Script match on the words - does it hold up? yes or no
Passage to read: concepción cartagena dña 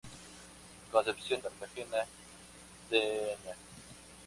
yes